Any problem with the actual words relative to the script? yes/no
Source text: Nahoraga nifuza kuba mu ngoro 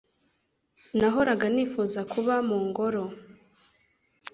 no